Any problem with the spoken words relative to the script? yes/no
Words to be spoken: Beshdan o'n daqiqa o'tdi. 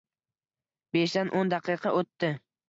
no